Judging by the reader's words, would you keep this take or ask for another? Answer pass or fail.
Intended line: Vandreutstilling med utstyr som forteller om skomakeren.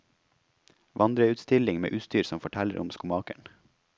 pass